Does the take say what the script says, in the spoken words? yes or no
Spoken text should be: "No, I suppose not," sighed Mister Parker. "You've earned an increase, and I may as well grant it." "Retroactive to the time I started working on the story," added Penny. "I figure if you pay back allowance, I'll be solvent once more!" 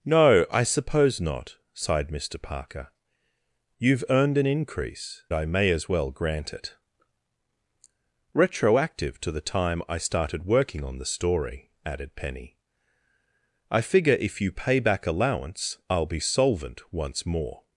no